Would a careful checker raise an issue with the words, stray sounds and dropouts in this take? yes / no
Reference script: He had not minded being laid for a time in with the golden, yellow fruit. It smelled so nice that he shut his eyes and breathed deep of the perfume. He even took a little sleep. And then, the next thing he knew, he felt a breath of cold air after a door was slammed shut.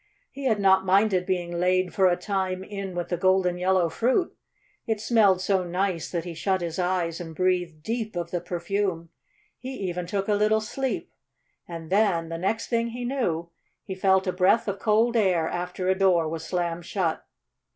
no